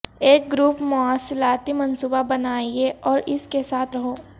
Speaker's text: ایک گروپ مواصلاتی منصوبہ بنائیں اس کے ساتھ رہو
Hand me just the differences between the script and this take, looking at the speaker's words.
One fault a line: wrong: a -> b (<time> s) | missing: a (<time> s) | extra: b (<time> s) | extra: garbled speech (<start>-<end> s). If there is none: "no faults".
extra: اور (3.0 s)